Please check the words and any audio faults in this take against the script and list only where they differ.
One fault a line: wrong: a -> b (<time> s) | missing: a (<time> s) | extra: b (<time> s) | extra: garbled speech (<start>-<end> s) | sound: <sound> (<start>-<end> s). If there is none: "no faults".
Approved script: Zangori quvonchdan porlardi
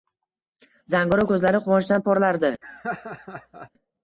extra: ko`zlari (1.3 s)
sound: laugh (2.6-3.7 s)